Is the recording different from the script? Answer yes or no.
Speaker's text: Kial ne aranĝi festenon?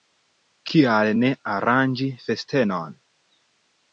no